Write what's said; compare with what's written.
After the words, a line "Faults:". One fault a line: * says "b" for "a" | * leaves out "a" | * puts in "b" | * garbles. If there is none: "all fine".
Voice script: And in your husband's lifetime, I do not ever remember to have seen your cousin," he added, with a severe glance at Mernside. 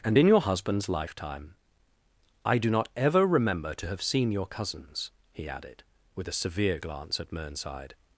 And in your husband's lifetime, I do not ever remember to have seen your cousins," he added, with a severe glance at Mernside.
Faults:
* says "cousins" for "cousin"